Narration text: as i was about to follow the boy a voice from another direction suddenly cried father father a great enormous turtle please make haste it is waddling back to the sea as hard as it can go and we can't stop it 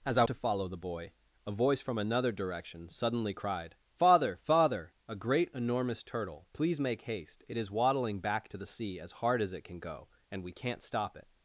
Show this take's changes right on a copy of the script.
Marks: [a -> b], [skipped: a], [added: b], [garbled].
as i [skipped: was about] to follow the boy a voice from another direction suddenly cried father father a great enormous turtle please make haste it is waddling back to the sea as hard as it can go and we can't stop it